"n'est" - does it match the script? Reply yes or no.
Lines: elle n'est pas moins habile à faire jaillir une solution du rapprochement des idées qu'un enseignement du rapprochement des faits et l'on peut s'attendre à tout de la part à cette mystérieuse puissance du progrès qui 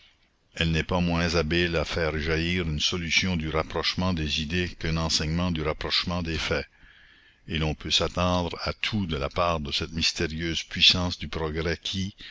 yes